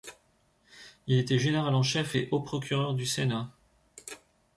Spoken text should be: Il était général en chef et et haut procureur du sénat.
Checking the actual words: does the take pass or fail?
fail